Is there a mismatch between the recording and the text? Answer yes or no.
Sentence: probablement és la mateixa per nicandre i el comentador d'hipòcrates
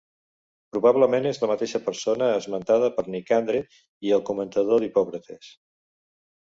yes